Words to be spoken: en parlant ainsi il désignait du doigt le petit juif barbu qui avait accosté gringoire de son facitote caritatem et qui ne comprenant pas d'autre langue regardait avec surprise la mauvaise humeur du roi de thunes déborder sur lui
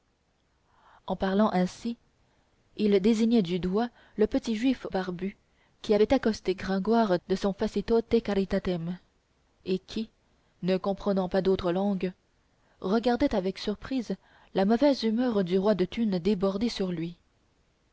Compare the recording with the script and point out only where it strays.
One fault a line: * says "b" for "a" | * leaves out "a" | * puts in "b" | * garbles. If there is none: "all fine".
all fine